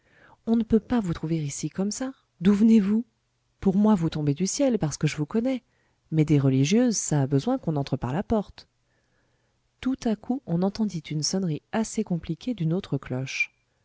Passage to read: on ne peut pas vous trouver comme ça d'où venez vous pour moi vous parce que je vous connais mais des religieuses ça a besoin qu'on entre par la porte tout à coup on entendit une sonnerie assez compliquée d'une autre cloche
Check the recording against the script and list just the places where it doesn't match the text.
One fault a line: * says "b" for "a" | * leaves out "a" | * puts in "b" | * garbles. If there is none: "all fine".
* puts in "ici"
* puts in "tombez du ciel"